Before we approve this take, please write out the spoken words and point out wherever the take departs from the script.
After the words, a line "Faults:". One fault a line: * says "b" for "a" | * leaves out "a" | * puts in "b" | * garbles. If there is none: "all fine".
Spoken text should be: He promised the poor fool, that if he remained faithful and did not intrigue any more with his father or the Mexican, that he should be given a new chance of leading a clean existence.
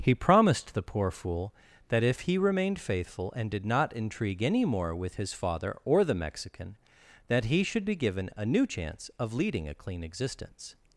He promised the poor fool, that if he remained faithful and did not intrigue any more with his father or the Mexican, that he should be given a new chance of leading a clean existence.
Faults:
all fine